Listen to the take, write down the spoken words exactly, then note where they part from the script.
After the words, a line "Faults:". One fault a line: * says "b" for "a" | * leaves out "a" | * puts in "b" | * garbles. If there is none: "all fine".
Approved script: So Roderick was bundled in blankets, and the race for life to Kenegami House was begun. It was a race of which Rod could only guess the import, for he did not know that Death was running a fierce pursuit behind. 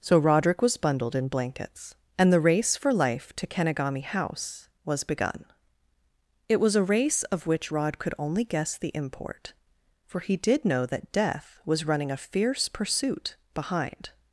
So Roderick was bundled in blankets, and the race for life to Kenegami House was begun. It was a race of which Rod could only guess the import, for he did know that Death was running a fierce pursuit behind.
Faults:
* leaves out "not"